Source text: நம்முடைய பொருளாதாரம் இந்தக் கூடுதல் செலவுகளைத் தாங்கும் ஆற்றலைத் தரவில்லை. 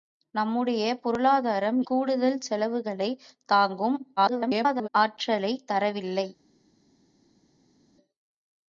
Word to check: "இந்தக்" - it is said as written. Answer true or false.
false